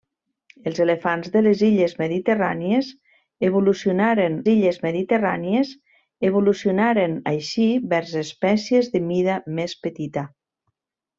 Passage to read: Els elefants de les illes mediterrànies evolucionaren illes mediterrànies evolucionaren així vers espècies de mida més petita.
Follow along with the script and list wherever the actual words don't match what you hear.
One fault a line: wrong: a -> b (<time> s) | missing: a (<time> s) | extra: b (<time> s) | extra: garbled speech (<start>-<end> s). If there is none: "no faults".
no faults